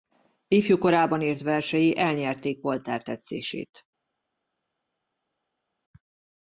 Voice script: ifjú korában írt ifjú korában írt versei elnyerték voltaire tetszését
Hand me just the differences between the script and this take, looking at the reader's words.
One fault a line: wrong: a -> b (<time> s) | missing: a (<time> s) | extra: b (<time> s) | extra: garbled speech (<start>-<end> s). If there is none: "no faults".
missing: ifjú korában írt (1.4 s)